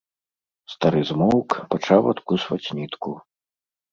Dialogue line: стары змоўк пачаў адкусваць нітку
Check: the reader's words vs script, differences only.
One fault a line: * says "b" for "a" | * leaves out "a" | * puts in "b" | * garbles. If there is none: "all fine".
all fine